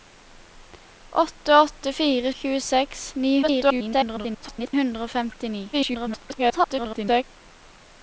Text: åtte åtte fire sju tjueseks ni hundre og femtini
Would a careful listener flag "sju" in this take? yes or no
yes